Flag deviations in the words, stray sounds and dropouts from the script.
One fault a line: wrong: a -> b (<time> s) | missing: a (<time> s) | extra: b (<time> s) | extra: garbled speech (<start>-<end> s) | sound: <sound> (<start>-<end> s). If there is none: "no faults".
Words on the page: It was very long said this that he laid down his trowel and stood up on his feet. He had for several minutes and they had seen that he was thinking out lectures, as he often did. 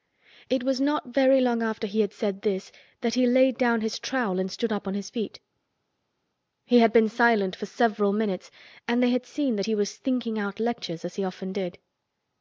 extra: not (0.8 s)
extra: after he had (1.6 s)
extra: been silent (6.9 s)